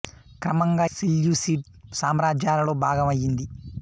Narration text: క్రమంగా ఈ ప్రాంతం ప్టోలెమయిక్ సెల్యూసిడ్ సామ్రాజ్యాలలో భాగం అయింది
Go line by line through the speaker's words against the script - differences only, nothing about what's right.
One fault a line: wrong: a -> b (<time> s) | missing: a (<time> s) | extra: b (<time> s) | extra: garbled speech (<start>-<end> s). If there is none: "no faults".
missing: ఈ ప్రాంతం ప్టోలెమయిక్ (0.8 s)